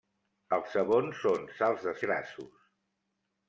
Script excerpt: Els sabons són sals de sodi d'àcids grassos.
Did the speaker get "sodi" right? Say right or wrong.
wrong